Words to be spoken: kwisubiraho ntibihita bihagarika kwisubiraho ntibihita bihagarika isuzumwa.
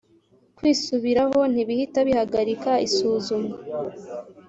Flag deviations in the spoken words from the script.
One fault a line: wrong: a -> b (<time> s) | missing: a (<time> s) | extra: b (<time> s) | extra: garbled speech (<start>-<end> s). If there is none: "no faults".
missing: kwisubiraho ntibihita bihagarika (2.7 s)